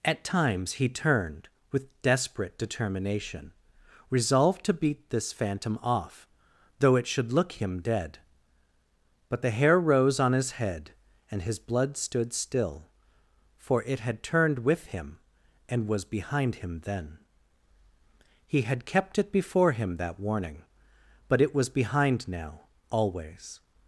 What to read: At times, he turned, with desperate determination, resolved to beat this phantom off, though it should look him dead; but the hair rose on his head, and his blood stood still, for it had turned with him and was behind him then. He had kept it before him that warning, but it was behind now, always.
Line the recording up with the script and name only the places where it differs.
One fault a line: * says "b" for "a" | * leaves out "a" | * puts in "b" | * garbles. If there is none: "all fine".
all fine